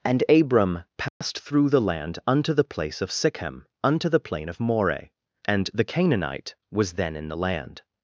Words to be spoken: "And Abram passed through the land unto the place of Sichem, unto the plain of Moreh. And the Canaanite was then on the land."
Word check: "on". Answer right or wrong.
wrong